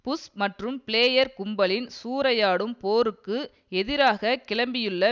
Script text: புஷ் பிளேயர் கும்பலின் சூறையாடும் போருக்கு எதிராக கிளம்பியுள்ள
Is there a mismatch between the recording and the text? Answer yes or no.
yes